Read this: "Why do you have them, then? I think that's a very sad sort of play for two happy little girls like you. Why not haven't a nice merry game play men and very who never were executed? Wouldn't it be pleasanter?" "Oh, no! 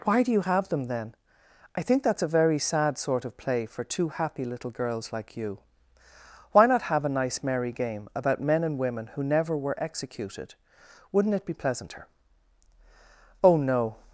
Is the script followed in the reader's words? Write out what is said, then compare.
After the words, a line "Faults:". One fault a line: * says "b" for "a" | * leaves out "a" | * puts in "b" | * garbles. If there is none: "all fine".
"Why do you have them, then? I think that's a very sad sort of play for two happy little girls like you. Why not have a nice merry game about men and women who never were executed? Wouldn't it be pleasanter?" "Oh, no!
Faults:
* says "have" for "haven't"
* says "about" for "play"
* says "women" for "very"